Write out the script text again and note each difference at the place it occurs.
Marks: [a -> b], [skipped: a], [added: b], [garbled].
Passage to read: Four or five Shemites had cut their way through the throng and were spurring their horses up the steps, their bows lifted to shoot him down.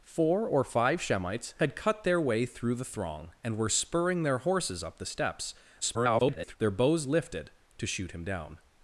Four or five Shemites had cut their way through the throng and were spurring their horses up the steps, [garbled] their bows lifted to shoot him down.